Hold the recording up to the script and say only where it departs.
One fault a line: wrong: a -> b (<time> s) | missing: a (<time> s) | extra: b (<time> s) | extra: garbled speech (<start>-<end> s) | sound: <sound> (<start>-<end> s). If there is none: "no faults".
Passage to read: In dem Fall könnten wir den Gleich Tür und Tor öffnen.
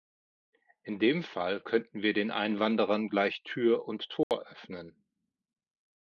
extra: Einwanderern (2.3 s)
sound: dropout (4.2-4.3 s)